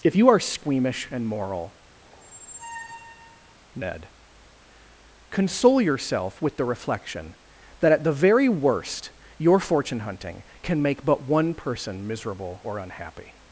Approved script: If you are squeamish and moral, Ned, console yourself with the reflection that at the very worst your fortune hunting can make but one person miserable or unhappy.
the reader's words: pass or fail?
pass